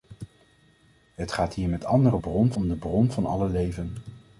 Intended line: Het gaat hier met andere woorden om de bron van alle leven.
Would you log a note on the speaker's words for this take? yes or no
yes